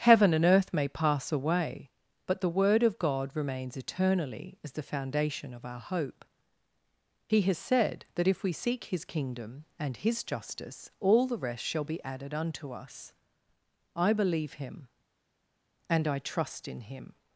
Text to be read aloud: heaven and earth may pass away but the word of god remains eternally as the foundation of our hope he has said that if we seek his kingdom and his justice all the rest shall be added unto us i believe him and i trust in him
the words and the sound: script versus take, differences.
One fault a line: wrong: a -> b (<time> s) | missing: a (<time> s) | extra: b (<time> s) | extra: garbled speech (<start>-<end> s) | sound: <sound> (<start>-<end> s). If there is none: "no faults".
no faults